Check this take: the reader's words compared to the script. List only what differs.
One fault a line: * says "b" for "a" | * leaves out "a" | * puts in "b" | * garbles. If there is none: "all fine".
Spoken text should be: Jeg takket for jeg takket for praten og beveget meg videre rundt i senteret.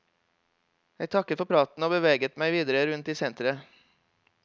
* leaves out "jeg takket for"